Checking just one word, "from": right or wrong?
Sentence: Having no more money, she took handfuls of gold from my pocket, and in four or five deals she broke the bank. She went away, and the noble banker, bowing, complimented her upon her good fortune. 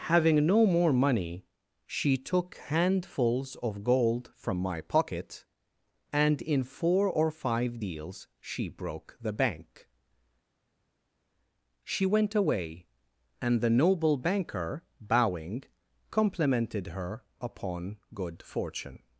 right